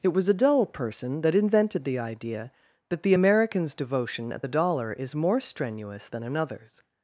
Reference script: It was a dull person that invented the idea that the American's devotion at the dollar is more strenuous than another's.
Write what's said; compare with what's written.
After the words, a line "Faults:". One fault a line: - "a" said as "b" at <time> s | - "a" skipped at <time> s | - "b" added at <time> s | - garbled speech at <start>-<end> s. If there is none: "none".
It was a dull person that invented the idea that the American's devotion at the dollar is more strenuous than another's.
Faults:
none